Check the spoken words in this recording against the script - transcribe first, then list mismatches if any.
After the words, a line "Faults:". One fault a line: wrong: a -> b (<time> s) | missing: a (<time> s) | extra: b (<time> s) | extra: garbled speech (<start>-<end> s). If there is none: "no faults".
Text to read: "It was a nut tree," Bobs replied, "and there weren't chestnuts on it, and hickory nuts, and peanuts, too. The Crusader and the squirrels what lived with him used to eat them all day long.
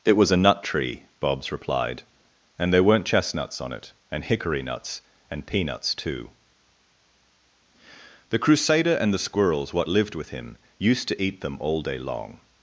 "It was a nut tree," Bobs replied, "and there weren't chestnuts on it, and hickory nuts, and peanuts, too. The Crusader and the squirrels what lived with him used to eat them all day long.
Faults:
no faults